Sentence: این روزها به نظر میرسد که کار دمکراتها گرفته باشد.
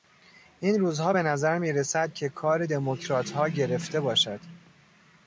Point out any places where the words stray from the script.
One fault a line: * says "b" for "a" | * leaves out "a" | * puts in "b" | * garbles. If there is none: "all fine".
all fine